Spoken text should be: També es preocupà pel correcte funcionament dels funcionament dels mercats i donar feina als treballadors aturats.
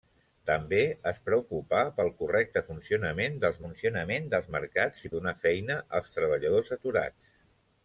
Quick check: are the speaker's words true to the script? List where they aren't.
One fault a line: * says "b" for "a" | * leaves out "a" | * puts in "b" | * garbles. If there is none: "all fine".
all fine